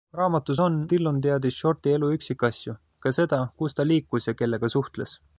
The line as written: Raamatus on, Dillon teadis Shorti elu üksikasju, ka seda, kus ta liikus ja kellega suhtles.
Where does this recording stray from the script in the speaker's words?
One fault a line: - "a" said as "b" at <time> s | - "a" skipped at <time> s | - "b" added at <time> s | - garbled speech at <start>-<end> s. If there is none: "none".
none